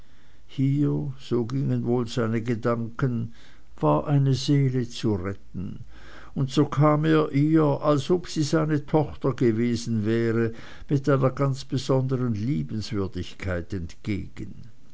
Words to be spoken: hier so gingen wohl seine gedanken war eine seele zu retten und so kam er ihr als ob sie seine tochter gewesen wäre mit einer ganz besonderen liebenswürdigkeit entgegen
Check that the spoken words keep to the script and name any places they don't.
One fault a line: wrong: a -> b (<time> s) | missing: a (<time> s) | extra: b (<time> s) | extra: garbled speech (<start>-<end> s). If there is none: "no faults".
no faults